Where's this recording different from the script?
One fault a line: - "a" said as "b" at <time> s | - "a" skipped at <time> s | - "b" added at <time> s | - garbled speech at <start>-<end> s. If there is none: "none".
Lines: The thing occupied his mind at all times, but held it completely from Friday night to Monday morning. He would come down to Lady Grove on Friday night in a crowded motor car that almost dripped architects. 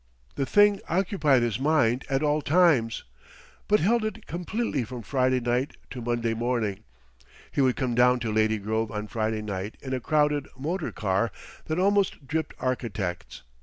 none